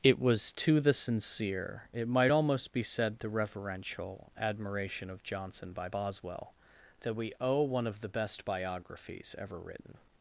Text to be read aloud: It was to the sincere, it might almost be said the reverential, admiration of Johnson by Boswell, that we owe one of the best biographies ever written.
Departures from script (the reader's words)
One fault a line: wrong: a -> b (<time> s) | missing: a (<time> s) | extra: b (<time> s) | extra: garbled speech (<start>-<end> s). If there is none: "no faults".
no faults